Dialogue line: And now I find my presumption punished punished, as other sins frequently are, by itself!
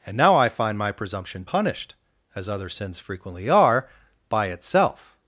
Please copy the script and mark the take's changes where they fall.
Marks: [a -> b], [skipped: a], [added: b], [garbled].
And now I find my presumption punished [skipped: punished,] as other sins frequently are, by itself!